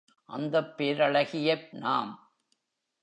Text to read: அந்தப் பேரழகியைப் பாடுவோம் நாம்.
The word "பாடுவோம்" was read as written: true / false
false